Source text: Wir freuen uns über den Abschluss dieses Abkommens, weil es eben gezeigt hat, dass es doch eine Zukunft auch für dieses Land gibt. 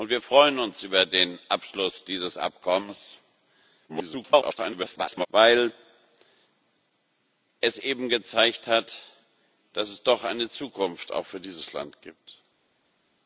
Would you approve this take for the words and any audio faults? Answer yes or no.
no